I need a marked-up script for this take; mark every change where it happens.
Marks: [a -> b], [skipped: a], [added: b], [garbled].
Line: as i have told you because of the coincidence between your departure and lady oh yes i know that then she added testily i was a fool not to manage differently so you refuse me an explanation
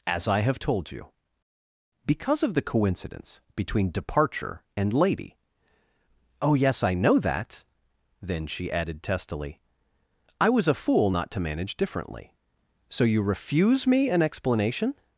as i have told you because of the coincidence between [skipped: your] departure and lady oh yes i know that then she added testily i was a fool not to manage differently so you refuse me an explanation